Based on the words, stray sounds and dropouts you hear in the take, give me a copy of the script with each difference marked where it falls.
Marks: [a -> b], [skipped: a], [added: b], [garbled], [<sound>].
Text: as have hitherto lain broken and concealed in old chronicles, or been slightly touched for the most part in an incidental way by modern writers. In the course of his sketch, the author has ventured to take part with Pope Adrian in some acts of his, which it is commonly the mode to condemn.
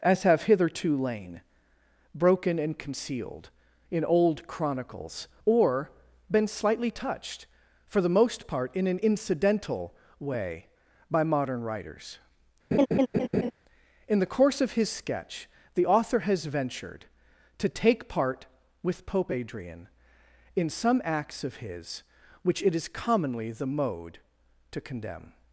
as have hitherto lain broken and concealed in old chronicles, or been slightly touched for the most part in an incidental way by modern writers. [laugh] In the course of his sketch, the author has ventured to take part with Pope Adrian in some acts of his, which it is commonly the mode to condemn.